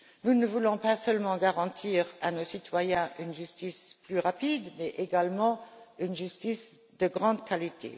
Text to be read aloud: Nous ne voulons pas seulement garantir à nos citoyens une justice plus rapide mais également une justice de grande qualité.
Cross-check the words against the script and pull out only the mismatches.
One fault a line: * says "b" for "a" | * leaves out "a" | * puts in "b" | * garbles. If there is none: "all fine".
all fine